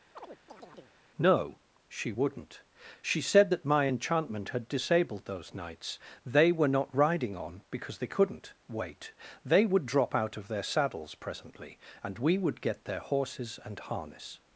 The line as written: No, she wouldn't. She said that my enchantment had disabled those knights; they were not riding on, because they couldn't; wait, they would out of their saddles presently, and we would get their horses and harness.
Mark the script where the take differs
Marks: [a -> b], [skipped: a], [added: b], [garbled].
No, she wouldn't. She said that my enchantment had disabled those knights; they were not riding on, because they couldn't; wait, they would [added: drop] out of their saddles presently, and we would get their horses and harness.